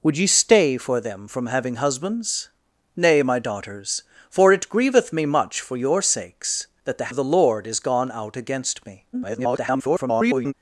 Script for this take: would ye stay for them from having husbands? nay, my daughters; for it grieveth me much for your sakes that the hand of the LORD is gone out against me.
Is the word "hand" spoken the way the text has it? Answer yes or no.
no